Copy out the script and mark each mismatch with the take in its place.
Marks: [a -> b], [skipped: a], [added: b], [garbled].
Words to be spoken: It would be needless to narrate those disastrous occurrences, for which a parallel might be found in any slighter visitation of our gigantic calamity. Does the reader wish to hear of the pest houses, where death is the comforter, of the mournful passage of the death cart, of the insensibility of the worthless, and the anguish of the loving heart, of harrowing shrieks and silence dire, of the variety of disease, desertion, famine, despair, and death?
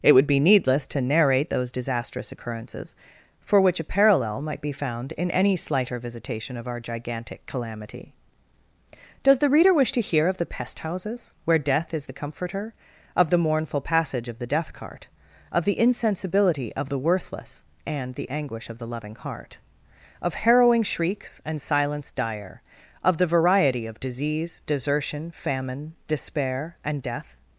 It would be needless to narrate those disastrous occurrences, for which a parallel might be found in any slighter visitation of our gigantic calamity. Does the reader wish to hear of the pest houses, where death is the comforter, of the mournful passage of the death cart, of the insensibility of the worthless, and the anguish of the loving heart, of harrowing shrieks and silence dire, of the variety of disease, desertion, famine, despair, and death?